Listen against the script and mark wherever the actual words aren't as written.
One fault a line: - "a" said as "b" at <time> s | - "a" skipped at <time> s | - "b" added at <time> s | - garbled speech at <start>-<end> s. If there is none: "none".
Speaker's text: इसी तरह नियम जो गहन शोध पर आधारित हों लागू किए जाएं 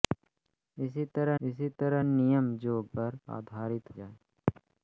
- "इसी तरह" added at 1.4 s
- "गहन शोध" skipped at 2.8 s
- "हों लागू किए" skipped at 3.9 s